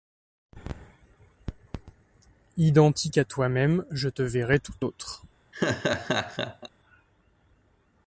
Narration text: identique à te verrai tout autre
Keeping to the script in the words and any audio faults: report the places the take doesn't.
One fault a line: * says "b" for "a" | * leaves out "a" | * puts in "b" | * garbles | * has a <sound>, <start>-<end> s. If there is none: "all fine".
* puts in "toi même je"
* has a laugh, 5.5-6.7 s